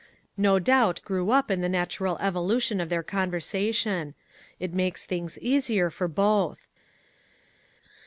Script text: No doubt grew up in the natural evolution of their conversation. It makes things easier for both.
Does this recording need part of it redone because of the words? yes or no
no